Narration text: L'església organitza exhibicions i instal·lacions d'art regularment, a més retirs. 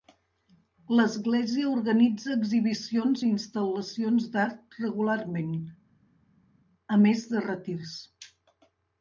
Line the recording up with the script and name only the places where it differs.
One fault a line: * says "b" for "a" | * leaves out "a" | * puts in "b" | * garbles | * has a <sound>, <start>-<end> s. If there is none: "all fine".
* puts in "de"